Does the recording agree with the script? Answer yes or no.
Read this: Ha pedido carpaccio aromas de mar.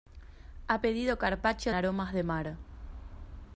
yes